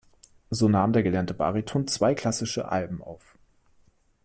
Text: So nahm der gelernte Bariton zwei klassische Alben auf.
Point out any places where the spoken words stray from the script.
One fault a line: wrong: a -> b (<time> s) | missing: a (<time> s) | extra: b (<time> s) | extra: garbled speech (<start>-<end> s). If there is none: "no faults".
no faults